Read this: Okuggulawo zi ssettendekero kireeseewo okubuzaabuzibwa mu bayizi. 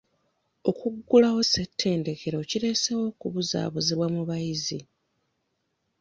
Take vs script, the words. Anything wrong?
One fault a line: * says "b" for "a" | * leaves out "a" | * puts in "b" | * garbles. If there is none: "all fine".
* leaves out "zi"